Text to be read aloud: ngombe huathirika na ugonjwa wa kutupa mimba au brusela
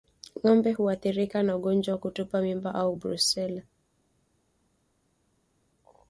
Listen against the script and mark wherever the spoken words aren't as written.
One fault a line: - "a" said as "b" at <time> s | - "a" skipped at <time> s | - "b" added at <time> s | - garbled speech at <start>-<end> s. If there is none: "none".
none